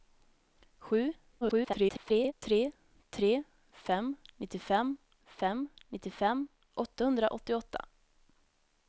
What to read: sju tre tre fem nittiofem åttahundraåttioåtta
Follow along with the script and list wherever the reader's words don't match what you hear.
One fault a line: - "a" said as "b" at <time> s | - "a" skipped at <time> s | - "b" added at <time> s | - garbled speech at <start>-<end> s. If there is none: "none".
- garbled speech at 1.4-2.3 s
- "fem nittiofem" added at 5.2 s